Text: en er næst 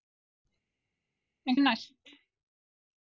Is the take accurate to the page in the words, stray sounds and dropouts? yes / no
yes